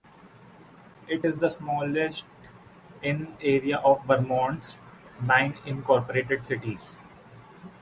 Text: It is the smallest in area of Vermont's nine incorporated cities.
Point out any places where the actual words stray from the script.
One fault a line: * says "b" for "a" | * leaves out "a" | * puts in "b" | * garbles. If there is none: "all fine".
all fine